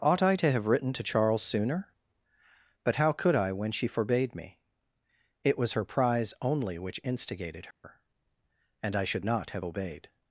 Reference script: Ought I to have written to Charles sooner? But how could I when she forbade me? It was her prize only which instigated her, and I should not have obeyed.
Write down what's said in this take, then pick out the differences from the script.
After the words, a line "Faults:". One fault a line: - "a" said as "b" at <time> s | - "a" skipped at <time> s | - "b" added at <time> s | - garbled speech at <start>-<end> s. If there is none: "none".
Ought I to have written to Charles sooner? But how could I when she forbade me? It was her prize only which instigated her, and I should not have obeyed.
Faults:
none